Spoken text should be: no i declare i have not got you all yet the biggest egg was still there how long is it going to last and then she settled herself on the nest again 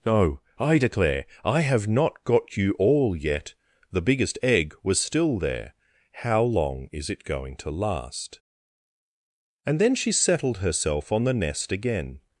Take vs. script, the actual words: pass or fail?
pass